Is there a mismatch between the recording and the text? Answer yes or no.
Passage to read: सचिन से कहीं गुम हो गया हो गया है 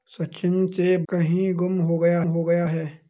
no